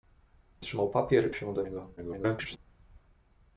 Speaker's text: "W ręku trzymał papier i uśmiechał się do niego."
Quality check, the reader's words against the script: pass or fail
fail